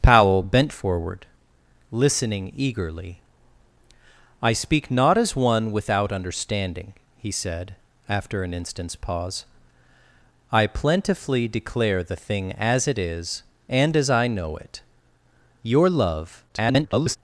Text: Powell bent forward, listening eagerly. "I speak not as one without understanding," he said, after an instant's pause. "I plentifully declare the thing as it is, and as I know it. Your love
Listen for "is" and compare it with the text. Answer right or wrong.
right